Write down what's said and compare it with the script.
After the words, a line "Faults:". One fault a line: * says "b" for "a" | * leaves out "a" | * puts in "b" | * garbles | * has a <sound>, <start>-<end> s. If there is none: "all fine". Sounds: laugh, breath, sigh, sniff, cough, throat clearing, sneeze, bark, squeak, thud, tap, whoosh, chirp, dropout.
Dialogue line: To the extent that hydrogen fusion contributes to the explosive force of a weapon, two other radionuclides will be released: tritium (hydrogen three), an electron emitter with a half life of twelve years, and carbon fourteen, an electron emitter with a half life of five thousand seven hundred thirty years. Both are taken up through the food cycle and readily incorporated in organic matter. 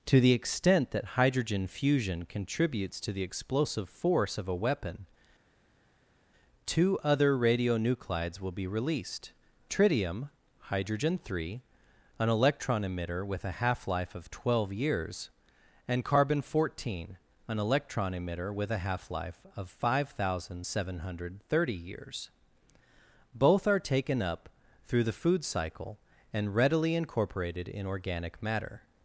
To the extent that hydrogen fusion contributes to the explosive force of a weapon, two other radionuclides will be released: tritium (hydrogen three), an electron emitter with a half life of twelve years, and carbon fourteen, an electron emitter with a half life of five thousand seven hundred thirty years. Both are taken up through the food cycle and readily incorporated in organic matter.
Faults:
all fine